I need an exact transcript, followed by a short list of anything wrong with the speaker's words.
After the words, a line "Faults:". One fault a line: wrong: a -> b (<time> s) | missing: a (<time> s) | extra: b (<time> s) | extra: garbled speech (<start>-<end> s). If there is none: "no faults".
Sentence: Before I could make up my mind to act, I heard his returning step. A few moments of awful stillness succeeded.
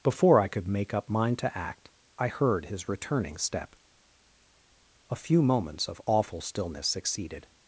Before I could make up mind to act, I heard his returning step. A few moments of awful stillness succeeded.
Faults:
missing: my (1.1 s)